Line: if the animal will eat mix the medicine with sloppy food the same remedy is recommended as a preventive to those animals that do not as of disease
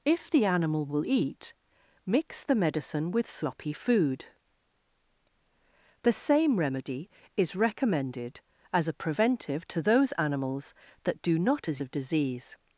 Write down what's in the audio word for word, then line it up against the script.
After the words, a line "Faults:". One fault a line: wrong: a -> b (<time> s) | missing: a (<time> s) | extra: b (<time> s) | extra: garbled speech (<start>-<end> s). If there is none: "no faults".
if the animal will eat mix the medicine with sloppy food the same remedy is recommended as a preventive to those animals that do not as of disease
Faults:
no faults